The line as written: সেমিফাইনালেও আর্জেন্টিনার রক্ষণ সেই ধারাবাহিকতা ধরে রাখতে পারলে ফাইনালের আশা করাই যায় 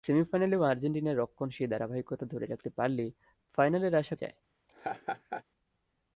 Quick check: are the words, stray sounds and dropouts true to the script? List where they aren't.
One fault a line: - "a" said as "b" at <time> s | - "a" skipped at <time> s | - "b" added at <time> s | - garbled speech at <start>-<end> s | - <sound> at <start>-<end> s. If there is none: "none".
- "করাই" skipped at 4.2 s
- laugh at 4.7-5.4 s